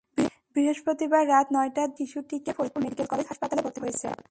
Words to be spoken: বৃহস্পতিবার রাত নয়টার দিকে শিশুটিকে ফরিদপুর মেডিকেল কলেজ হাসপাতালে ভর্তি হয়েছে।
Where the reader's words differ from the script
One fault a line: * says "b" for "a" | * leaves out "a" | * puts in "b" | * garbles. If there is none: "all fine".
all fine